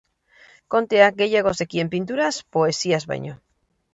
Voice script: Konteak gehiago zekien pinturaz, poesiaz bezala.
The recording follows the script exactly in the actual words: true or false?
false